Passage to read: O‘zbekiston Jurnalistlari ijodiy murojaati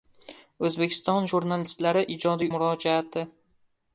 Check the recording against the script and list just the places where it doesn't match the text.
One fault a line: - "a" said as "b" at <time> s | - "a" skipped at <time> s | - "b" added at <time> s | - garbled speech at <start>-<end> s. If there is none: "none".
none